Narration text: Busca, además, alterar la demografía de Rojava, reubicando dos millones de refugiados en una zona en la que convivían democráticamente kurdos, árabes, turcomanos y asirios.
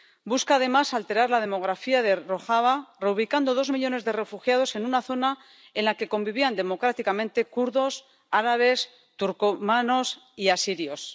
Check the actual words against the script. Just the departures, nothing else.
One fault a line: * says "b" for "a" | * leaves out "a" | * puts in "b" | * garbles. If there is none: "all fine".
all fine